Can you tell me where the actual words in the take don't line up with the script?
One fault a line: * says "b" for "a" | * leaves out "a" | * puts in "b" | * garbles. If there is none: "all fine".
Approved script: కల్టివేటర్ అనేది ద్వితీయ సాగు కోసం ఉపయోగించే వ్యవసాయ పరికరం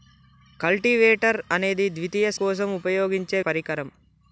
* leaves out "సాగు"
* leaves out "వ్యవసాయ"